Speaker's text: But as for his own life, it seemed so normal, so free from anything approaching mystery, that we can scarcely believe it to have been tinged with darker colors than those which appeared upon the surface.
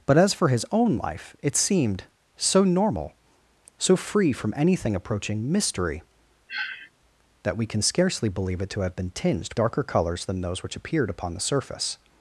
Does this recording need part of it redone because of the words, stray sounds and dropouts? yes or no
yes